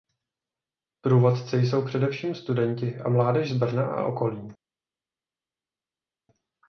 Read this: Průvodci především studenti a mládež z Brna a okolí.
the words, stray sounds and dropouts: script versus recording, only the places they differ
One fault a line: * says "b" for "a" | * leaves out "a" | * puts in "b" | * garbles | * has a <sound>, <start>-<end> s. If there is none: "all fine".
* puts in "jsou"